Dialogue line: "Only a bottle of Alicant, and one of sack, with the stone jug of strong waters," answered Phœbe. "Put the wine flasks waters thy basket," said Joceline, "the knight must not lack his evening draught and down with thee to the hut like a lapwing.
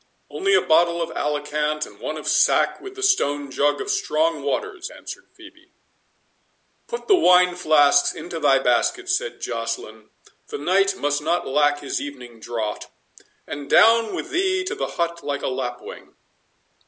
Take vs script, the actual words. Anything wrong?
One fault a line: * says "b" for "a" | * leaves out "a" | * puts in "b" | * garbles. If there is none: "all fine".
* says "into" for "waters"